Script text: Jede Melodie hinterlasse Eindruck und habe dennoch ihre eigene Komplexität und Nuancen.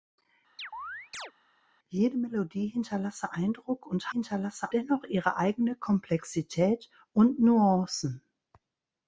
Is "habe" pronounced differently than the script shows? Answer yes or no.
yes